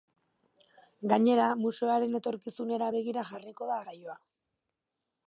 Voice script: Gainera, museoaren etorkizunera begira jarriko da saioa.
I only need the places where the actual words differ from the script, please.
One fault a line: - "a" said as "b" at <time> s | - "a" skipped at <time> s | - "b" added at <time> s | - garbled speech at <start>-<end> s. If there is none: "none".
none